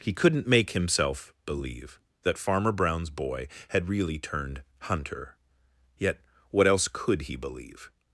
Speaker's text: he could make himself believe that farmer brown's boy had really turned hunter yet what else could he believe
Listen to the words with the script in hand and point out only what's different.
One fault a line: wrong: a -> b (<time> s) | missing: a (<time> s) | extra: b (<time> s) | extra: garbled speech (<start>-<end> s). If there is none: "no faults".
wrong: could -> couldn't (0.1 s)